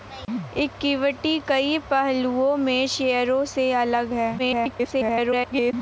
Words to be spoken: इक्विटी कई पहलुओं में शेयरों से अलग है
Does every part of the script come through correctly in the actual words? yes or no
no